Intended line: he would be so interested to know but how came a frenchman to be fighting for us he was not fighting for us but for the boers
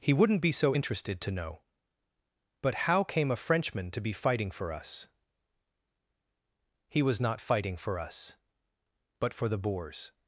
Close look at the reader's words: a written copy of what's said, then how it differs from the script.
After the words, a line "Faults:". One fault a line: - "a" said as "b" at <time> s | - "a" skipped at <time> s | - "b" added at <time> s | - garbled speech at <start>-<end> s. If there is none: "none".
he wouldn't be so interested to know but how came a frenchman to be fighting for us he was not fighting for us but for the boers
Faults:
- "would" said as "wouldn't" at 0.1 s